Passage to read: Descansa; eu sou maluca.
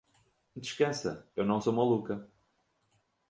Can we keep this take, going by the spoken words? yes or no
no